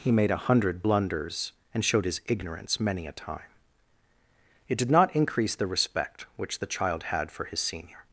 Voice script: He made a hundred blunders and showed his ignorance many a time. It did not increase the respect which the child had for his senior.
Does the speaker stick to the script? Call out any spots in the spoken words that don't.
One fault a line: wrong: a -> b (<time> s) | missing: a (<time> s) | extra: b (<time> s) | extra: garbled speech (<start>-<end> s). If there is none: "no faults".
no faults